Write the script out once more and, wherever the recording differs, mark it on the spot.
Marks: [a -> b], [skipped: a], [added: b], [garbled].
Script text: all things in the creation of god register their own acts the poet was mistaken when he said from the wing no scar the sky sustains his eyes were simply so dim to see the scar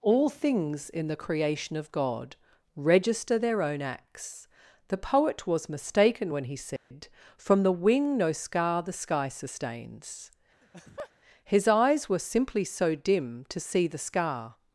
all things in the creation of god register their own acts the poet was mistaken when he said from the wing no scar the sky sustains his eyes were simply so dim to see the scar